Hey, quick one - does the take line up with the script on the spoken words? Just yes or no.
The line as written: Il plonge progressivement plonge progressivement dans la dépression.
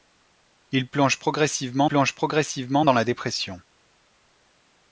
yes